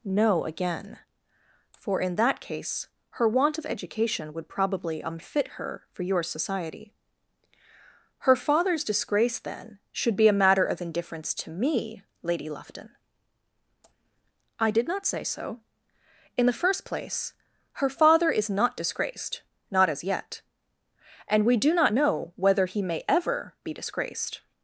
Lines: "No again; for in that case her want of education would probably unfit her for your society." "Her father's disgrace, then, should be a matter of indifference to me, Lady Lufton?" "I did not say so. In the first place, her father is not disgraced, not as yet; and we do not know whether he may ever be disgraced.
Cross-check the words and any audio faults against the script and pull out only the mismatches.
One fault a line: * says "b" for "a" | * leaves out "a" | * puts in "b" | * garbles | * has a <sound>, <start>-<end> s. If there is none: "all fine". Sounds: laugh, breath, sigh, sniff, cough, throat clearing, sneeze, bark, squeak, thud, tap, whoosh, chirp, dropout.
all fine